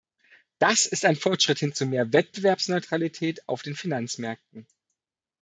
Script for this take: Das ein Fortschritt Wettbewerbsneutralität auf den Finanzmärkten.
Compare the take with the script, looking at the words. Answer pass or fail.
fail